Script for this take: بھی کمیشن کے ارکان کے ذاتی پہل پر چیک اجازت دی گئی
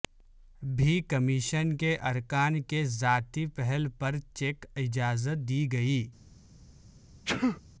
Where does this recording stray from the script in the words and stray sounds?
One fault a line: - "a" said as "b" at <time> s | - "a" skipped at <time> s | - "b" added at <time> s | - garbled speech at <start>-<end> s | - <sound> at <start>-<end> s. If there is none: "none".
- sneeze at 7.3-7.6 s